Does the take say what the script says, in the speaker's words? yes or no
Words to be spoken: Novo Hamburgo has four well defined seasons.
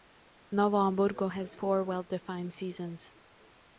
yes